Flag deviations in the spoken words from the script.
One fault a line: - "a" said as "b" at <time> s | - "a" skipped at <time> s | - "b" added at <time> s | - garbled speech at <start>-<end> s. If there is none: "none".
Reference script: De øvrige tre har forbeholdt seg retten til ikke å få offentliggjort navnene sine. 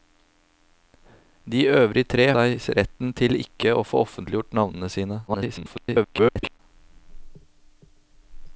- "har forbeholdt" skipped at 2.2 s
- garbled speech at 5.3-6.6 s